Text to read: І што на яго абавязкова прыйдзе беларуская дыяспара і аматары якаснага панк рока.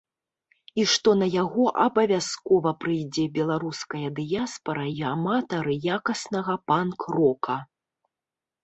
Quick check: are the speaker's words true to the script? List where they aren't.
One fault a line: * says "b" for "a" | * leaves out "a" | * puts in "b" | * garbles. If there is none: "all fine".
all fine